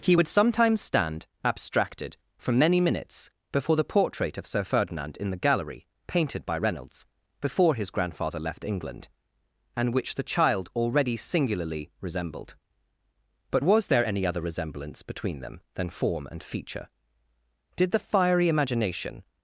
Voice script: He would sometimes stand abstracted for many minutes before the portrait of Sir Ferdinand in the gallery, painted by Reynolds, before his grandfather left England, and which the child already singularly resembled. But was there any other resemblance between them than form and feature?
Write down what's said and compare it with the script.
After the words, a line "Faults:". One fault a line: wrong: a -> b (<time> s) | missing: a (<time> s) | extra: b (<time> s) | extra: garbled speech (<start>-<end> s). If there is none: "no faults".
He would sometimes stand abstracted for many minutes before the portrait of Sir Ferdinand in the gallery, painted by Reynolds, before his grandfather left England, and which the child already singularly resembled. But was there any other resemblance between them than form and feature? Did the fiery imagination
Faults:
extra: Did the fiery imagination (17.7 s)